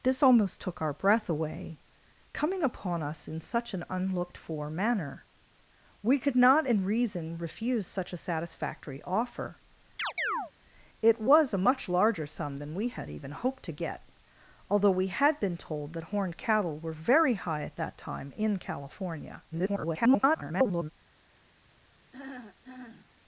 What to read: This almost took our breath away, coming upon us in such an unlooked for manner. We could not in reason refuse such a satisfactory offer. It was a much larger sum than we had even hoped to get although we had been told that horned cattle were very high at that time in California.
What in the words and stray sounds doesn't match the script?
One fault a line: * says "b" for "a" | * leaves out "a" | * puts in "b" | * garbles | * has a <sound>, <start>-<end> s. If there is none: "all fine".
* has a chirp, 10.0-10.5 s
* garbles
* has a throat clearing, 22.1-23.1 s